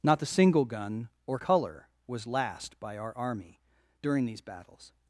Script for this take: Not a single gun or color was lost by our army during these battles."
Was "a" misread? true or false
true